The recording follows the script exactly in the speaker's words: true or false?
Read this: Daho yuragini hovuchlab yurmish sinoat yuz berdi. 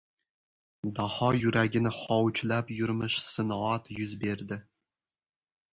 true